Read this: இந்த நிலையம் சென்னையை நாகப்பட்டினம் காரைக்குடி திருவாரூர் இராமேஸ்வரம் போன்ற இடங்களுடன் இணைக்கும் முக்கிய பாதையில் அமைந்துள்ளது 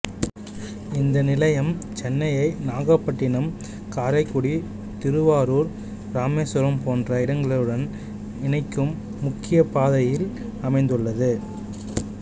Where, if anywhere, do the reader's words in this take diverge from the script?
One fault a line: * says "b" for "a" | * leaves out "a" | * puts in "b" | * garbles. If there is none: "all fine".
all fine